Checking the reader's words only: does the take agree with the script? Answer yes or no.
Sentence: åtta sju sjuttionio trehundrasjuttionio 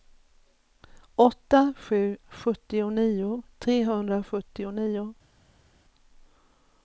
yes